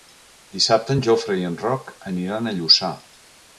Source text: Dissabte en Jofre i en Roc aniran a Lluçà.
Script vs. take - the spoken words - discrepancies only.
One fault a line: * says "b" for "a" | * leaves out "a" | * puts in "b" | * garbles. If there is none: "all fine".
all fine